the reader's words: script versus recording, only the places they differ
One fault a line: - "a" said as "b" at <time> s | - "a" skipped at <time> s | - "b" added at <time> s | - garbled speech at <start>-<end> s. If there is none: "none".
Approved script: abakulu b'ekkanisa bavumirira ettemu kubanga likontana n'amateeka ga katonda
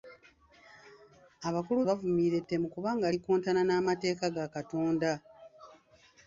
- "b'ekkanisa" skipped at 1.8 s